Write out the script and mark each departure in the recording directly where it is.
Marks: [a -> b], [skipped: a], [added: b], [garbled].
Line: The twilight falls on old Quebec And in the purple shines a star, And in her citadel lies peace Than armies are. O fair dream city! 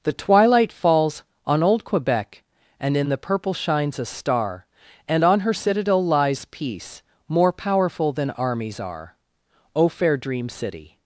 The twilight falls on old Quebec And in the purple shines a star, And [in -> on] her citadel lies peace [added: More powerful] Than armies are. O fair dream city!